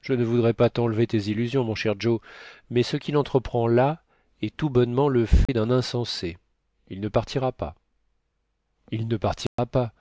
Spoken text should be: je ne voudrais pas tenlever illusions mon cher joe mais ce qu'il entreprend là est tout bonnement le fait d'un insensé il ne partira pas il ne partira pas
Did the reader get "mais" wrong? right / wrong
right